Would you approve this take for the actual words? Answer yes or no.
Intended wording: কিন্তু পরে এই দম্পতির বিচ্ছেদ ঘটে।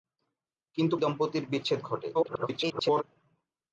no